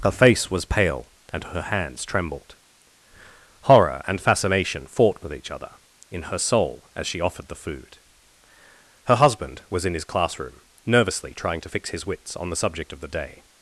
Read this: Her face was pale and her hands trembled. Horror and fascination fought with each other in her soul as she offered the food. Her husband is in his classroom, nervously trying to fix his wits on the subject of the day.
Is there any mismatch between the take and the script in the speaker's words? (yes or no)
yes